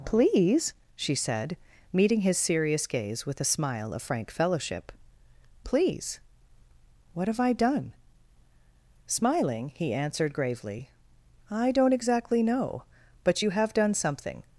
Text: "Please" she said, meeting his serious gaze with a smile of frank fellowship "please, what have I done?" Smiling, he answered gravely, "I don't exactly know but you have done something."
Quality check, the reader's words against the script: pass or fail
pass